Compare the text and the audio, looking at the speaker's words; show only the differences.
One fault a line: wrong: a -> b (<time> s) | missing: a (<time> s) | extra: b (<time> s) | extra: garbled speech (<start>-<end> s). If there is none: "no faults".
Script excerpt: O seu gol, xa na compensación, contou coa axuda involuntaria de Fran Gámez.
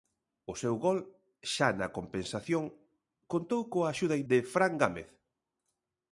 missing: involuntaria (4.2 s)